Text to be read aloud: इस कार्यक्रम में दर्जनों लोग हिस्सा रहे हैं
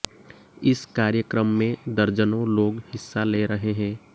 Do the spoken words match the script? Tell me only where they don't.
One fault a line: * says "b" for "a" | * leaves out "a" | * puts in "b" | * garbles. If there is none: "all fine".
* puts in "ले"